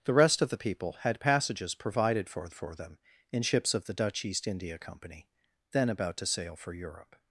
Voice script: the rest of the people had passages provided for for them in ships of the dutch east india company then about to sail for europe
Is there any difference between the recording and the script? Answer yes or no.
no